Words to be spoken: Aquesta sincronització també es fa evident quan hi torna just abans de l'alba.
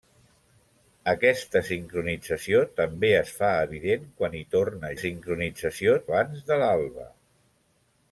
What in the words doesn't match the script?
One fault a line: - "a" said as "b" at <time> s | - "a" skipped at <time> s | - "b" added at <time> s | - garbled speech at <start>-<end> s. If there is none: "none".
- "just" said as "sincronització" at 5.0 s